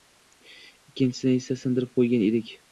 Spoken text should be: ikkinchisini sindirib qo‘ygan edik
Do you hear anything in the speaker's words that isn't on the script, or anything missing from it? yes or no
yes